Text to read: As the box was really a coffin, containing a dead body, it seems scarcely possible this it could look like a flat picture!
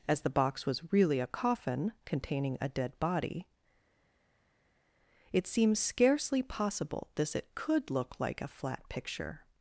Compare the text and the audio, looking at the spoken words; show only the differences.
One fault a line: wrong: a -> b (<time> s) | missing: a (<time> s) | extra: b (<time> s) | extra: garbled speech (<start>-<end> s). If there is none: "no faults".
no faults